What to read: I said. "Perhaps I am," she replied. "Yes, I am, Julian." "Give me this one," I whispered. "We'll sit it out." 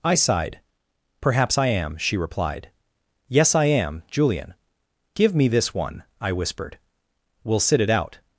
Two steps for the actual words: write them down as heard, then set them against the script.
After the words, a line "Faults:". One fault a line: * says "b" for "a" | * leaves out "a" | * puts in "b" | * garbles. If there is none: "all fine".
I sighed. "Perhaps I am," she replied. "Yes, I am, Julian." "Give me this one," I whispered. "We'll sit it out."
Faults:
* says "sighed" for "said"